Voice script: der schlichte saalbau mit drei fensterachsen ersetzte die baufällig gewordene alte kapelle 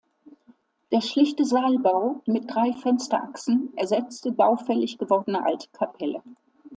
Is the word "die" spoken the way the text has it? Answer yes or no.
no